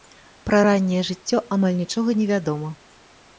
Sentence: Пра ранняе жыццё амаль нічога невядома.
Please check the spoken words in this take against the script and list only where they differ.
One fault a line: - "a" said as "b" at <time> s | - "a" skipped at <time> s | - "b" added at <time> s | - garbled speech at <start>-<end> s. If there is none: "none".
none